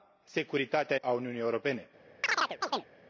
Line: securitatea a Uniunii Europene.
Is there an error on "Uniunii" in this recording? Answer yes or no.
no